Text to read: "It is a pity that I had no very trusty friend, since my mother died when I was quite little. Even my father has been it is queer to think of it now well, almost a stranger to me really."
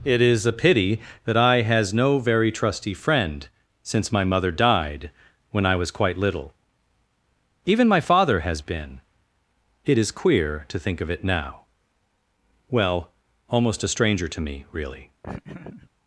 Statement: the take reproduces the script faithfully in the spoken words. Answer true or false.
false